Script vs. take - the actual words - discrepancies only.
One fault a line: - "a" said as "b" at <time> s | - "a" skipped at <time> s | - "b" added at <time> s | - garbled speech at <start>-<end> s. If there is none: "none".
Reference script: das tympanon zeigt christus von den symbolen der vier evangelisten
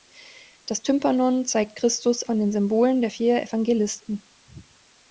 none